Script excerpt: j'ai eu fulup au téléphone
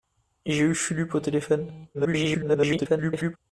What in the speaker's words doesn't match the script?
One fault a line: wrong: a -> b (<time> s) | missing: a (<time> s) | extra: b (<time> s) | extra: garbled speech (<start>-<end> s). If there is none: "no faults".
extra: garbled speech (1.9-3.4 s)